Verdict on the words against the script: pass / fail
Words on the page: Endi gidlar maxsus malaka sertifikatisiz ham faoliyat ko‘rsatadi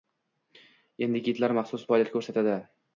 fail